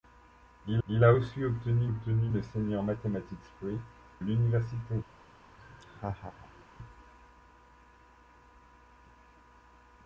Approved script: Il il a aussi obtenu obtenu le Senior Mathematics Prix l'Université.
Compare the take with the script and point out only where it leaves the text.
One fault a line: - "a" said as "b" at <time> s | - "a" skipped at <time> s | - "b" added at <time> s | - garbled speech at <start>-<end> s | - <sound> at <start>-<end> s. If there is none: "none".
- laugh at 5.6-6.6 s